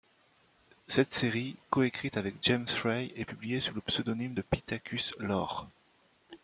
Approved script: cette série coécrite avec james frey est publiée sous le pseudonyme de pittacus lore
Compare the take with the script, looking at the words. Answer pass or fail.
pass